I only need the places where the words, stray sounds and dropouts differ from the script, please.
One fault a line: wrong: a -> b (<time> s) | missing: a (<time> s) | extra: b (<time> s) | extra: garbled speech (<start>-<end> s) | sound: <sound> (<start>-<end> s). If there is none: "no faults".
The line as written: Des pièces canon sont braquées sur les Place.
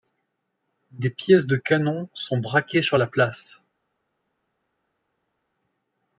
extra: de (1.4 s)
wrong: les -> la (2.9 s)